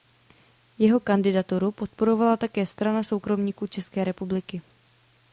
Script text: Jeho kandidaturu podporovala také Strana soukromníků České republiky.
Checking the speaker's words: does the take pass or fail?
pass